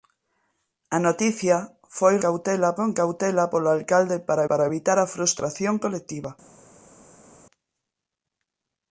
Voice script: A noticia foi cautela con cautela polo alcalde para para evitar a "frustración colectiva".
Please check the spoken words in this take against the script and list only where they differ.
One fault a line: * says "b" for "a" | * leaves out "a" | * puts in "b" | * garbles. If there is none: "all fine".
all fine